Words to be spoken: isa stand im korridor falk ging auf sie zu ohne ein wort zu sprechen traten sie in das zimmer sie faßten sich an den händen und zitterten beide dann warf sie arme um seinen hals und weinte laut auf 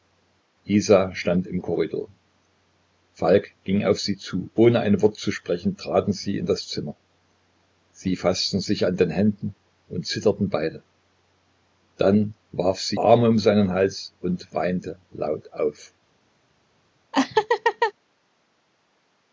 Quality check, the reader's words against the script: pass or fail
pass